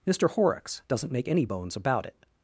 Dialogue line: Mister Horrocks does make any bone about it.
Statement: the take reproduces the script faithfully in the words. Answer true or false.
false